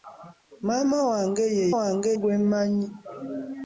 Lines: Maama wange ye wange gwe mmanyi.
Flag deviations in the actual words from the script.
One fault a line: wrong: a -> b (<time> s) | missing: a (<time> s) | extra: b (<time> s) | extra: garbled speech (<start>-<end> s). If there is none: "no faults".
no faults